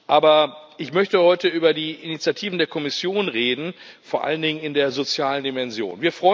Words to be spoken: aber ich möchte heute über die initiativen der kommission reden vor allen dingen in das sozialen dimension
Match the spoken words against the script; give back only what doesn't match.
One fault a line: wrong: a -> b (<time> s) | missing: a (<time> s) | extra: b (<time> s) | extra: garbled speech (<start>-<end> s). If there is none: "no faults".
wrong: das -> der (4.7 s)